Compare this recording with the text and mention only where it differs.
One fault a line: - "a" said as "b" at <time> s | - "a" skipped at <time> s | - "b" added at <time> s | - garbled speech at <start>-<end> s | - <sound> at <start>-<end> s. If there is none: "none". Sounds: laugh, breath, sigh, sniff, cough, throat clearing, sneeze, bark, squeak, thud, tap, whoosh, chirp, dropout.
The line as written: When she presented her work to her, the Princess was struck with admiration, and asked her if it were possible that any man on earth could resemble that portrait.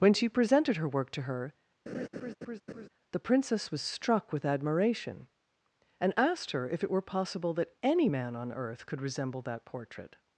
- laugh at 1.9-2.9 s